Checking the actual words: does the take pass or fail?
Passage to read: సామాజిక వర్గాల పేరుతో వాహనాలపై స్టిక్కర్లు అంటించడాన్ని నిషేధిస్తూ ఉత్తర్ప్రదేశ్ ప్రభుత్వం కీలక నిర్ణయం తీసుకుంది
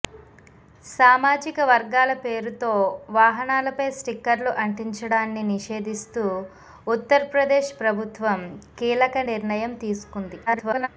fail